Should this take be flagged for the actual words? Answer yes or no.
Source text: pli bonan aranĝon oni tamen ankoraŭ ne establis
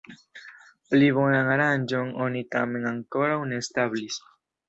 no